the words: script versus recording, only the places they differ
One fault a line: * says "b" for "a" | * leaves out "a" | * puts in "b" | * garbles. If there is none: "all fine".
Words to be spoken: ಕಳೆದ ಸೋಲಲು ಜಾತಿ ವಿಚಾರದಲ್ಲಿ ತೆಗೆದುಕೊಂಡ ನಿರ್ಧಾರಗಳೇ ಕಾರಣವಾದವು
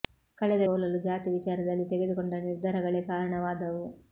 all fine